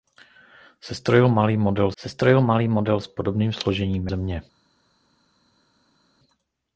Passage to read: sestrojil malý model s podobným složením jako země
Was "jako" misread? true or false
true